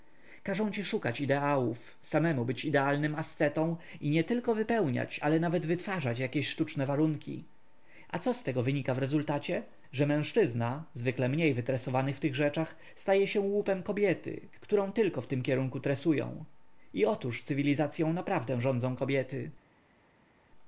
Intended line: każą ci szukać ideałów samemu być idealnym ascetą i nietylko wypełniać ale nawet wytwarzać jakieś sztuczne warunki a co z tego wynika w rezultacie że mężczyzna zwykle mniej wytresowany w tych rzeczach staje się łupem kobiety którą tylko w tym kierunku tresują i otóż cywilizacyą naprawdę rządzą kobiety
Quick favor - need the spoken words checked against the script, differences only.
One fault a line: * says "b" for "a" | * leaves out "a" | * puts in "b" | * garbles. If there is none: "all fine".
all fine